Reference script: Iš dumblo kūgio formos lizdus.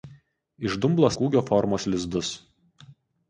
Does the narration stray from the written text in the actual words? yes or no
no